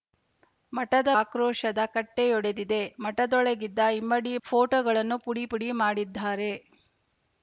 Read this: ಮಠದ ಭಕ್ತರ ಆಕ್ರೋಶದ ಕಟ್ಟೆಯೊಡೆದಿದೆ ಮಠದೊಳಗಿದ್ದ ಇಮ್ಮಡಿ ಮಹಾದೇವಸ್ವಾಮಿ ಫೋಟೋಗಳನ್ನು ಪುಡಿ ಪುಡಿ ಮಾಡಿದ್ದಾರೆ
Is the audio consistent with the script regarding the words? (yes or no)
no